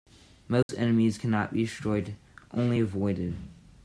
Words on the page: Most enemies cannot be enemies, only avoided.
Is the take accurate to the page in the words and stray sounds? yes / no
no